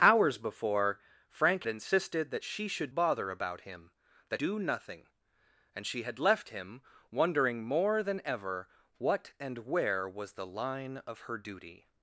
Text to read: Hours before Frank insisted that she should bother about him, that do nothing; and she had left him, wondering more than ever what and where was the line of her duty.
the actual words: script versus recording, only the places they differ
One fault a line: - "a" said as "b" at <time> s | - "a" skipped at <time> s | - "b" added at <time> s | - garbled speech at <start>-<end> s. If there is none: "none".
none